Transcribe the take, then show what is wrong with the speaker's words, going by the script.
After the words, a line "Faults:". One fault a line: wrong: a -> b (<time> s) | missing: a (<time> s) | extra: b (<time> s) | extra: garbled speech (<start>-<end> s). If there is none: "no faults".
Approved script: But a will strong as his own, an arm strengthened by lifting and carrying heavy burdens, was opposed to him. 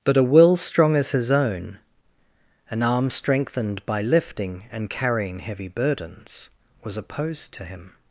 But a will strong as his own, an arm strengthened by lifting and carrying heavy burdens, was opposed to him.
Faults:
no faults